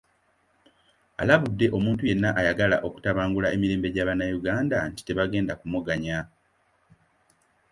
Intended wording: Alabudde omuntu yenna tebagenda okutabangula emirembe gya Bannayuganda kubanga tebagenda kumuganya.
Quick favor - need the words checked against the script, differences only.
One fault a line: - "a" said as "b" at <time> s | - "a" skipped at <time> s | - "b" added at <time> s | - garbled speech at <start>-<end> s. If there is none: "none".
- "tebagenda" said as "ayagala" at 2.4 s
- "kubanga" said as "nti" at 4.9 s